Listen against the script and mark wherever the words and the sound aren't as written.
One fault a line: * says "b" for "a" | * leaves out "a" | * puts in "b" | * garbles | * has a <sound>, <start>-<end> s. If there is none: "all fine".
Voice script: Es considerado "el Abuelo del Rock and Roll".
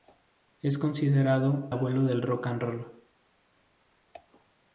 * leaves out "el"